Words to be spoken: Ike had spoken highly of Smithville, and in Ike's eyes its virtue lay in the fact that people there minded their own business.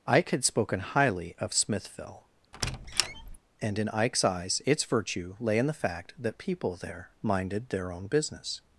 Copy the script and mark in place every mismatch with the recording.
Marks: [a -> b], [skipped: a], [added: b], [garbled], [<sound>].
Ike had spoken highly of Smithville, [squeak] and in Ike's eyes its virtue lay in the fact that people there minded their own business.